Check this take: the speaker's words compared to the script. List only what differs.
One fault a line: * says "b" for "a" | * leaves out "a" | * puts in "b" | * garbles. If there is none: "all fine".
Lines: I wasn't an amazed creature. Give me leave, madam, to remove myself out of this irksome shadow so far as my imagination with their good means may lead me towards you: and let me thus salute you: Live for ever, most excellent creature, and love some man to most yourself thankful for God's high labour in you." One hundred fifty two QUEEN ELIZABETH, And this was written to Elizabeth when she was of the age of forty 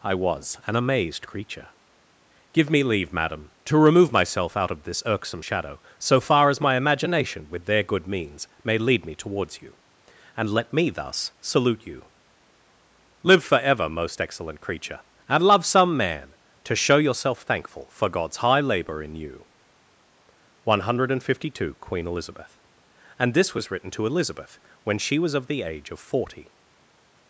* says "was" for "wasn't"
* says "show" for "most"